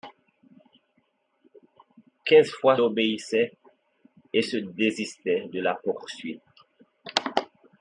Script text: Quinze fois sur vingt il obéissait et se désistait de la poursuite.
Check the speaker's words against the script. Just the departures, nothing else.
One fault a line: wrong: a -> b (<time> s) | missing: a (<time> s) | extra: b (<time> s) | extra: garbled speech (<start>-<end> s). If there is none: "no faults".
missing: sur vingt il (2.8 s)